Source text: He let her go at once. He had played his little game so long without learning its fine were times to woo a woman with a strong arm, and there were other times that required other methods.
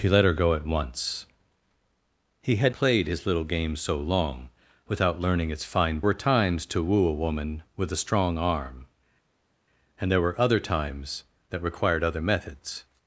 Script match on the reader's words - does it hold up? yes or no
yes